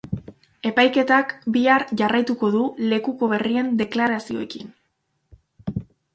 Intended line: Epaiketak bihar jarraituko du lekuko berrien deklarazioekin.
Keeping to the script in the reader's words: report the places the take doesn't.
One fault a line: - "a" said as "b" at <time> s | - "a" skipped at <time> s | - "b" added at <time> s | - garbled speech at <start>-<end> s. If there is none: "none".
none